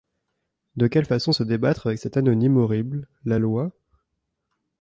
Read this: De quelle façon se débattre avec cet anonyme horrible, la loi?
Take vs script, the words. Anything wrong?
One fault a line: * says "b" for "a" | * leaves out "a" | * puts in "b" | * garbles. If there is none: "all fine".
all fine